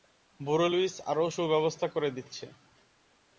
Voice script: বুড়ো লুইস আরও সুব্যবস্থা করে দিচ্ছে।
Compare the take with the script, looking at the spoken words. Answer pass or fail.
pass